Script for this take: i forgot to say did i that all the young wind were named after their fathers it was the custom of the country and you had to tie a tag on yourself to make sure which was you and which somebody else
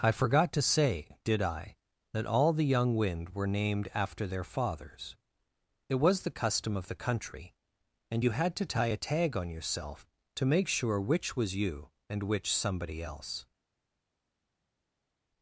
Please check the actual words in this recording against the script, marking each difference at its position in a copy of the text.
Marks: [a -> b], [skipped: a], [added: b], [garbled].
i forgot to say did i that all the young wind were named after their fathers it was the custom of the country and you had to tie a tag on yourself to make sure which was you and which somebody else